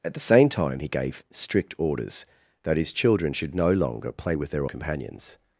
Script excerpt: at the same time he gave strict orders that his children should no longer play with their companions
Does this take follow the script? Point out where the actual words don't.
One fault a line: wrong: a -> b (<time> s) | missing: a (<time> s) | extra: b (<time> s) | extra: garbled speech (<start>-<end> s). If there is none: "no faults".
no faults